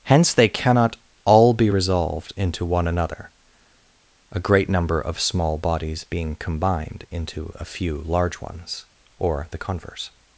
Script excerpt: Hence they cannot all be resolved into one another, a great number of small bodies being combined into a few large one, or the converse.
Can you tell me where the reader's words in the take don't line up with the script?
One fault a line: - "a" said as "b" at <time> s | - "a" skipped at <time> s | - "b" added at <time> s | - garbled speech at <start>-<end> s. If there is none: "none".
- "one" said as "ones" at 8.4 s